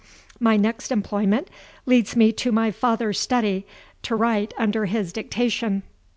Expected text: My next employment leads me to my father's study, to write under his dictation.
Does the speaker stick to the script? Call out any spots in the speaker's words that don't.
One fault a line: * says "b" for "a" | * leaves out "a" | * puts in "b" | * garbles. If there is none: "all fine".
all fine